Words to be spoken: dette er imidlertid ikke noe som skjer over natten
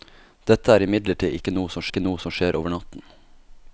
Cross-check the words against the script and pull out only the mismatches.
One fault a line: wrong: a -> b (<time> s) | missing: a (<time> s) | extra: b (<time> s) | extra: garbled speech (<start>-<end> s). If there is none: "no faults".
extra: ikke noe som (1.9 s)